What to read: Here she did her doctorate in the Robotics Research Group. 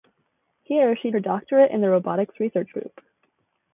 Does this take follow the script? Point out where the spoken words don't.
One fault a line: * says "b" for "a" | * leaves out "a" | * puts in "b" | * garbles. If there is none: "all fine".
* leaves out "did"